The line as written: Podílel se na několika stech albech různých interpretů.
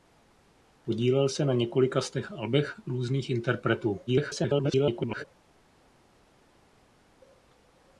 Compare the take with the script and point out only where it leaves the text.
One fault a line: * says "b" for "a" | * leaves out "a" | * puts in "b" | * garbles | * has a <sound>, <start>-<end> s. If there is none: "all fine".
* garbles